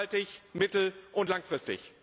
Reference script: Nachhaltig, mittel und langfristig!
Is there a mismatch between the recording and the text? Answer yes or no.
no